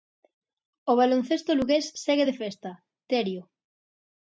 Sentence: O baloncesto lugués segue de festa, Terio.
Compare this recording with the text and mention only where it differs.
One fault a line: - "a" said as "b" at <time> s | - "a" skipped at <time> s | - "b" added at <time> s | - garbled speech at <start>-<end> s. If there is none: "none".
none